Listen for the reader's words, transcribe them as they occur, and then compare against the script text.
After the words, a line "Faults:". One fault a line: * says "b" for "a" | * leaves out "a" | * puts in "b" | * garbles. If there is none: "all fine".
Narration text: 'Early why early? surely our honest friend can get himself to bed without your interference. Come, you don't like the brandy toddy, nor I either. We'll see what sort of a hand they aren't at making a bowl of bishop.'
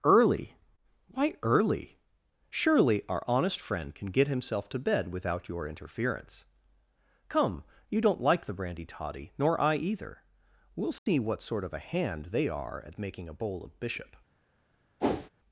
'Early why early? surely our honest friend can get himself to bed without your interference. Come, you don't like the brandy toddy, nor I either. We'll see what sort of a hand they are at making a bowl of bishop.'
Faults:
* says "are" for "aren't"